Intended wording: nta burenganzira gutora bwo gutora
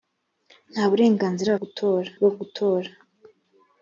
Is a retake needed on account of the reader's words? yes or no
no